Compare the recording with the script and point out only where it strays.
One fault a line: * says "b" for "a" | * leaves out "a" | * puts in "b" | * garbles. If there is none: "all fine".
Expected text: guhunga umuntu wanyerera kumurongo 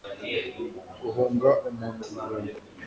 * leaves out "wanyerera"